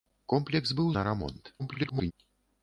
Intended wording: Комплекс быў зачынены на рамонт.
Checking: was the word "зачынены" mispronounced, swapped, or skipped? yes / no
yes